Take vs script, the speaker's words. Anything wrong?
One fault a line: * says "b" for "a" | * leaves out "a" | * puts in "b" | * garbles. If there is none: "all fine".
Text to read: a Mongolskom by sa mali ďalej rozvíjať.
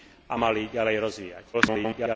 * leaves out "Mongolskom by sa"
* garbles